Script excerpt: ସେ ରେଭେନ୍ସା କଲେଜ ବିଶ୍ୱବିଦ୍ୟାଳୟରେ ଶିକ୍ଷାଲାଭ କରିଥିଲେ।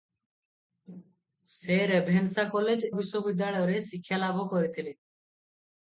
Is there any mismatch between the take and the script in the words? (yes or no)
no